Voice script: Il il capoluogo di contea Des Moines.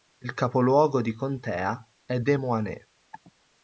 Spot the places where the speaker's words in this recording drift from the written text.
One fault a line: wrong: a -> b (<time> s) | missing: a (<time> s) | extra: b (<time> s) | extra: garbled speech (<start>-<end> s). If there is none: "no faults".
missing: il (0.3 s)
extra: è (2.1 s)